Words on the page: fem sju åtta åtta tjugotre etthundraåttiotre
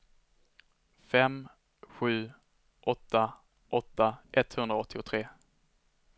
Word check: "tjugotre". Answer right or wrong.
wrong